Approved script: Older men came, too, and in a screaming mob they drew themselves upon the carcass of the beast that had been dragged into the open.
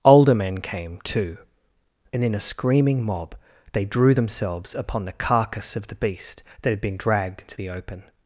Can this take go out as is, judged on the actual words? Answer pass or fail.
pass